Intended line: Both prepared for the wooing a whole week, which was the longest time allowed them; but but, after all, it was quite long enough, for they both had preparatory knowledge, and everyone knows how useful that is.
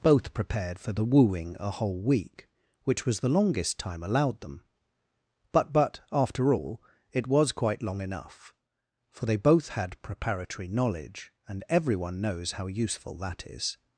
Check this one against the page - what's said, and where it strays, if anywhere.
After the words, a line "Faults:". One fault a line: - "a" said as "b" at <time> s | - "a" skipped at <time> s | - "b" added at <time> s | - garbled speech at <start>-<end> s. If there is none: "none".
Both prepared for the wooing a whole week, which was the longest time allowed them; but but, after all, it was quite long enough, for they both had preparatory knowledge, and everyone knows how useful that is.
Faults:
none